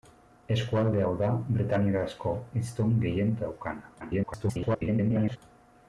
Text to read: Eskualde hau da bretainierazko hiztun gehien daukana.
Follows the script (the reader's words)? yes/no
no